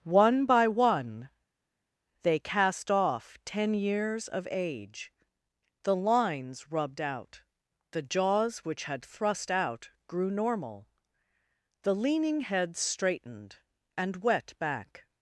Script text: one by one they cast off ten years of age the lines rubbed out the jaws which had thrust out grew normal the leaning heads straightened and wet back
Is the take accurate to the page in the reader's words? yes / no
yes